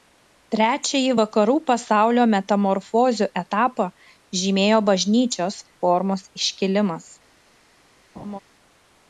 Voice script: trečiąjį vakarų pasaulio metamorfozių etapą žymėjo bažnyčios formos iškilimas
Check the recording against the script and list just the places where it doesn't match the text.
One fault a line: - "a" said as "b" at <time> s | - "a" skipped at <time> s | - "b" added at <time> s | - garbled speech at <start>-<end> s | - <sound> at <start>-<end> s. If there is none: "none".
- laugh at 8.1-8.4 s